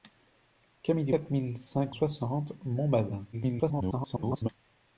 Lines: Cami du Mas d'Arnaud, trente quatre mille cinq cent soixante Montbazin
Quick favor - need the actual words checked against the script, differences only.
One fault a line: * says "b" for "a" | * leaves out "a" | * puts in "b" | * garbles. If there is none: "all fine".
* leaves out "Mas d'Arnaud trente"
* leaves out "cent"
* garbles